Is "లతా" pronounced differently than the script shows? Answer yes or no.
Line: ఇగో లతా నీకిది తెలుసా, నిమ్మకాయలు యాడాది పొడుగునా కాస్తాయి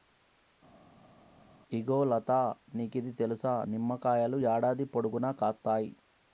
no